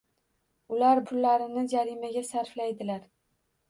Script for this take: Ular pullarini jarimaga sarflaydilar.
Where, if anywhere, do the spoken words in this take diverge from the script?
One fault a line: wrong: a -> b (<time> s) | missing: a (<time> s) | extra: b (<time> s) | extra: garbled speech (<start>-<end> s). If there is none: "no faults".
no faults